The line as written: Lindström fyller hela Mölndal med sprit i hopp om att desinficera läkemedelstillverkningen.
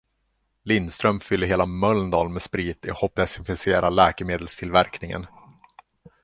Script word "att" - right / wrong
wrong